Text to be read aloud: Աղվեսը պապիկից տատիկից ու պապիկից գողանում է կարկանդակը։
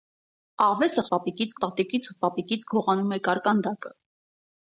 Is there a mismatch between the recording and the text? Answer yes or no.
no